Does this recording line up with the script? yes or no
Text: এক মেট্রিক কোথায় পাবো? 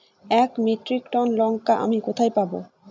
no